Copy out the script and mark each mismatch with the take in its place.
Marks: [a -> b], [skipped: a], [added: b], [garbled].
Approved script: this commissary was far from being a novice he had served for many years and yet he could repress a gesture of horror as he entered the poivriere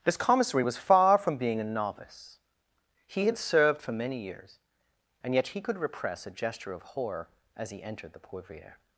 this commissary was far from being a novice he had served for many years and yet he could repress a gesture of horror as he entered the poivriere